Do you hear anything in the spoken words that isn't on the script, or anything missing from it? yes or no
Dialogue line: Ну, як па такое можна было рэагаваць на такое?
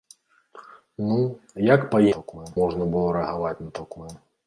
no